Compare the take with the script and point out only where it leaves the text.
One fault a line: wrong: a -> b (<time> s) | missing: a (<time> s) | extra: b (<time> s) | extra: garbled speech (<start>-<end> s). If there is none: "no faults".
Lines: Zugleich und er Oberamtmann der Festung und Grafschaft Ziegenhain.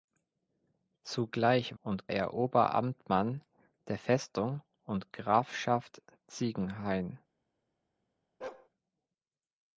no faults